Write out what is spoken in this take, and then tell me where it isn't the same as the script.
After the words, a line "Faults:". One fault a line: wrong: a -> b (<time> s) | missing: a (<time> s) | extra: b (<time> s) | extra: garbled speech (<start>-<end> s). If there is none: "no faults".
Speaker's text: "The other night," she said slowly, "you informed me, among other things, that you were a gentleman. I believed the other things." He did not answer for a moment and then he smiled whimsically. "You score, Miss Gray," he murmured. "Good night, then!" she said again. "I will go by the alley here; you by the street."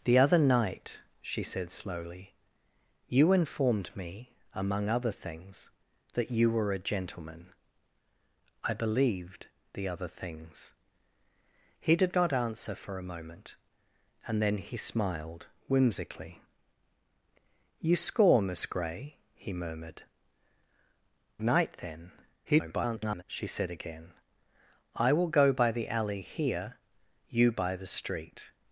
"The other night," she said slowly, "you informed me, among other things, that you were a gentleman. I believed the other things." He did not answer for a moment and then he smiled whimsically. "You score, Miss Gray," he murmured. "Night, then!" [garbled] she said again. "I will go by the alley here; you by the street."
Faults:
missing: Good (20.0 s)
extra: garbled speech (22.4-23.2 s)